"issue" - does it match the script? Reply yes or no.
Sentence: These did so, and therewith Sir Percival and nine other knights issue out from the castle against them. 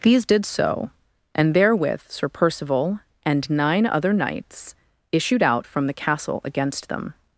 no